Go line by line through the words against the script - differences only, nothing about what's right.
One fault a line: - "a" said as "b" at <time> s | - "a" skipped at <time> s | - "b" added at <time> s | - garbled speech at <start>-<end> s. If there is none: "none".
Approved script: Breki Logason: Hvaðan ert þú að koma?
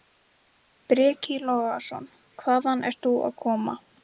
none